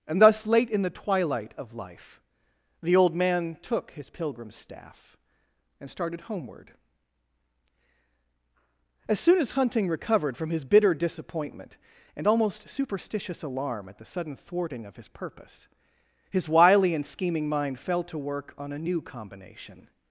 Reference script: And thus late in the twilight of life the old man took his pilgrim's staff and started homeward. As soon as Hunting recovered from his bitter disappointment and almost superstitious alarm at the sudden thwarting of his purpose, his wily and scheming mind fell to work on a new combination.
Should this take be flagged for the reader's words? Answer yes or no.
no